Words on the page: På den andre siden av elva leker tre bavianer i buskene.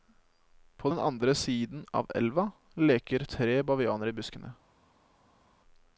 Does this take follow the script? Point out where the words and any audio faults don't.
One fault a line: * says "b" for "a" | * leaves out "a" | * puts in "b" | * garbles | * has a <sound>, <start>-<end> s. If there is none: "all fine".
all fine